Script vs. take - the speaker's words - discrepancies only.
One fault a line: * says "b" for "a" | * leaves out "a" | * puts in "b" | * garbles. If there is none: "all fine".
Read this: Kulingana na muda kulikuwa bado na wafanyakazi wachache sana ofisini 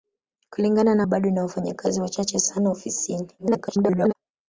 * leaves out "muda kulikuwa"
* garbles